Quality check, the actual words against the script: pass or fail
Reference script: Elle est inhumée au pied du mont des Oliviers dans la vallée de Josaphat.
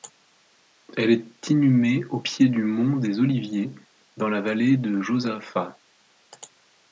pass